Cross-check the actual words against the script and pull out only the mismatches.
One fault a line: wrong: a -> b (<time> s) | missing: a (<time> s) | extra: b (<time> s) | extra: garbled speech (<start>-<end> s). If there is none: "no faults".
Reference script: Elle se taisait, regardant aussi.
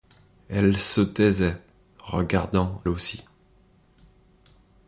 no faults